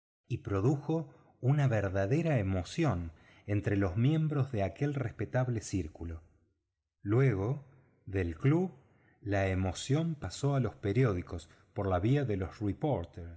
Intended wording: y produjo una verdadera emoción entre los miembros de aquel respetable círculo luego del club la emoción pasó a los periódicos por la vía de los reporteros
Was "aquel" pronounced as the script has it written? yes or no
yes